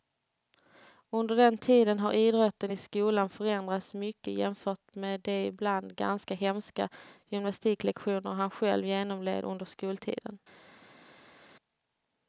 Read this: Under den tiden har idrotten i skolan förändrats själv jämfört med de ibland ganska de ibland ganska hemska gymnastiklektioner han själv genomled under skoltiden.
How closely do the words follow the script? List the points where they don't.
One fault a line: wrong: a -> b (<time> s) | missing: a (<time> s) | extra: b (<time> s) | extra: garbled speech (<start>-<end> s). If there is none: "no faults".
wrong: själv -> mycket (3.9 s)
missing: de ibland ganska (6.3 s)